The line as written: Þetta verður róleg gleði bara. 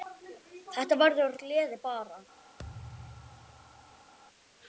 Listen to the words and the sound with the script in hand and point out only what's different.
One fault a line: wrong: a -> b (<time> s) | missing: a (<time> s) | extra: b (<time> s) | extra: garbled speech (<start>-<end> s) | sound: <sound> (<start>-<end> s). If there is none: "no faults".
missing: róleg (1.4 s)
sound: thud (2.6-4.1 s)